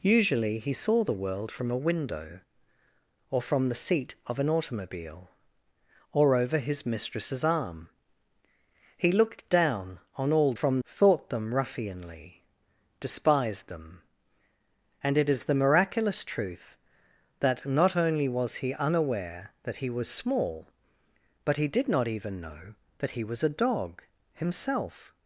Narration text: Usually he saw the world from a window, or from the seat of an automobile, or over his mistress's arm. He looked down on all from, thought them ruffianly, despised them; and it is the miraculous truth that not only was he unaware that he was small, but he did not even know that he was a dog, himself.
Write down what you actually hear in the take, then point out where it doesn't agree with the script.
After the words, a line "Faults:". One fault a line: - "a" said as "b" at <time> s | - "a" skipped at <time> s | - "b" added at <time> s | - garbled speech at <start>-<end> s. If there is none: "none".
Usually he saw the world from a window, or from the seat of an automobile, or over his mistress's arm. He looked down on all from, thought them ruffianly, despised them; and it is the miraculous truth that not only was he unaware that he was small, but he did not even know that he was a dog, himself.
Faults:
none